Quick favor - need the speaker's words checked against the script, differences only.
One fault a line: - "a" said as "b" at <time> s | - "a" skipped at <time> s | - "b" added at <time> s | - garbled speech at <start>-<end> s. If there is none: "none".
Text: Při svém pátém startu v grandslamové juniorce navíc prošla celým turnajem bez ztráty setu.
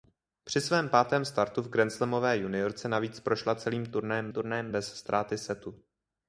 - "turnajem" added at 4.3 s